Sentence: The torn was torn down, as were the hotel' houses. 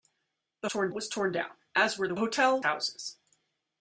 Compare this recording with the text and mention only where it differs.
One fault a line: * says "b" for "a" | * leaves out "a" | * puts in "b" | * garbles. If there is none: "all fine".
all fine